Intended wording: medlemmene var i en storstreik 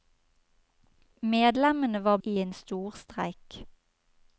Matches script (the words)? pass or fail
pass